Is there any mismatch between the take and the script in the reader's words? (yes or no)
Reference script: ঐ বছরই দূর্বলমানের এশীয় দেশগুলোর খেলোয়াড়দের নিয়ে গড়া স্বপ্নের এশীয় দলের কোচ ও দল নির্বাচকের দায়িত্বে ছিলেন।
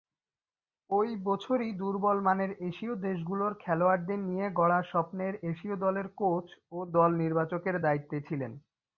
no